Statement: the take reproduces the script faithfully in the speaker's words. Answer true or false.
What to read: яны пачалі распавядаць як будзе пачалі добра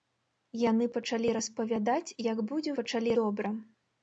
true